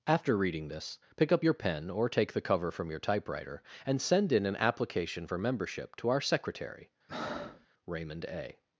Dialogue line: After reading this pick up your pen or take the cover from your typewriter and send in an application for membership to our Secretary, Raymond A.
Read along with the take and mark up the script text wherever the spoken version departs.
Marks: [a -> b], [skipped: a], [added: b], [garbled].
After reading this pick up your pen or take the cover from your typewriter and send in an application for membership to our Secretary, Raymond A.